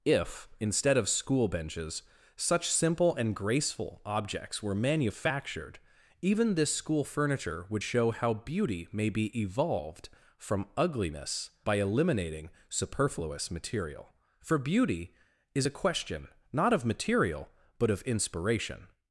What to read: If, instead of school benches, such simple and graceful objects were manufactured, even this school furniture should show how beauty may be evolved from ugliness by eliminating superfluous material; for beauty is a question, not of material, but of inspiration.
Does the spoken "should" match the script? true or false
false